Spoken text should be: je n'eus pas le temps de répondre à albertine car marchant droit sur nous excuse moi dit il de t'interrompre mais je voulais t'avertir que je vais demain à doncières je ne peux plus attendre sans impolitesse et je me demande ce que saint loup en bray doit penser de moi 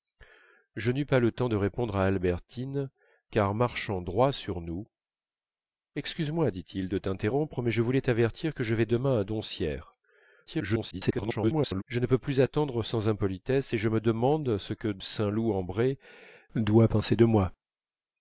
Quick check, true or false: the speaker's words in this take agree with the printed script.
false